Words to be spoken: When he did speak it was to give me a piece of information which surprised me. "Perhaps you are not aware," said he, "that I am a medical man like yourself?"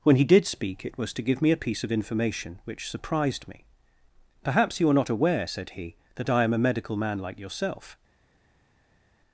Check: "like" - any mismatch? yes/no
no